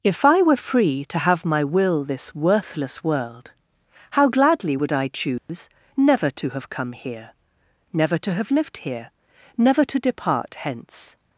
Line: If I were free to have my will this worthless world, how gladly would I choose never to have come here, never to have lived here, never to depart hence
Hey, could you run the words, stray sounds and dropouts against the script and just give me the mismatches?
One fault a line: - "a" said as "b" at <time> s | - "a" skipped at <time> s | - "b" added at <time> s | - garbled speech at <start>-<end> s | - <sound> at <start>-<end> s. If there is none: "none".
- dropout at 5.4-5.5 s